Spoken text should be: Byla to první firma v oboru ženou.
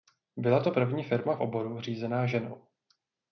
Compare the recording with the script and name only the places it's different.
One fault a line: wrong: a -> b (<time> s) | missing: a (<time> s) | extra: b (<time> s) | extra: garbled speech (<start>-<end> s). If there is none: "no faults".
extra: řízená (1.8 s)